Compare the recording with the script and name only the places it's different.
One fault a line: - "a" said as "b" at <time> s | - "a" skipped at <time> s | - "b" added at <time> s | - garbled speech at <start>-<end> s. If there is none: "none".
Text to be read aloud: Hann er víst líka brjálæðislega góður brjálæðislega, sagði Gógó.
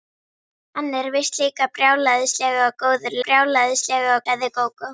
none